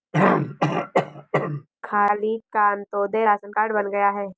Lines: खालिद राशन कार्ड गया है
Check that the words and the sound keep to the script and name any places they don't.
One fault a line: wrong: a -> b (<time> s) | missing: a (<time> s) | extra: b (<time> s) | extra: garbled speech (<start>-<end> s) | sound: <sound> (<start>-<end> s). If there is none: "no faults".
sound: throat clearing (0.1-1.7 s)
extra: का अंत्योदय (2.5 s)
extra: बन (3.7 s)